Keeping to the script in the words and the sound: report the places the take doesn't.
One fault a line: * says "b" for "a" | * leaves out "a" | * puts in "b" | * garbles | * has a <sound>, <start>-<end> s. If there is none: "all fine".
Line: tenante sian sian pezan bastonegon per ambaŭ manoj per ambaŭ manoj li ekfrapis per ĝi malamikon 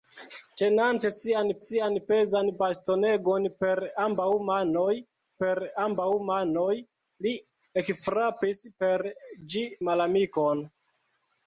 all fine